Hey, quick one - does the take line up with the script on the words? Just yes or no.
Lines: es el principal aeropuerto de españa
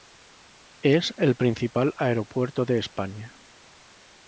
yes